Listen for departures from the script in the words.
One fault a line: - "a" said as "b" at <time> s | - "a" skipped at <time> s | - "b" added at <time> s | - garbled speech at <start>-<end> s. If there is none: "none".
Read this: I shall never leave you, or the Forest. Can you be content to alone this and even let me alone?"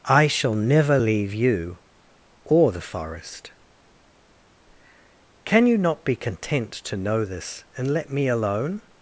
- "not" added at 5.8 s
- "alone" said as "know" at 7.0 s
- "even" skipped at 7.9 s